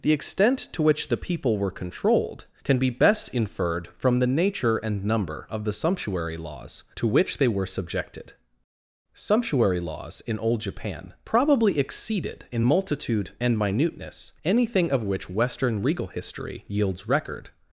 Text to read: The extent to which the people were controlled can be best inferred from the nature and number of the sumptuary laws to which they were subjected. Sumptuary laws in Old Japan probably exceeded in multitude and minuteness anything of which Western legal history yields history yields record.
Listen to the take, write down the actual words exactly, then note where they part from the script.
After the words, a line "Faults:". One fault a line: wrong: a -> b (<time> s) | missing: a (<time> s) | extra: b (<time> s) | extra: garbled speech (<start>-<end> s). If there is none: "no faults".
The extent to which the people were controlled can be best inferred from the nature and number of the sumptuary laws to which they were subjected. Sumptuary laws in Old Japan probably exceeded in multitude and minuteness anything of which Western legal history yields record.
Faults:
missing: history yields (17.1 s)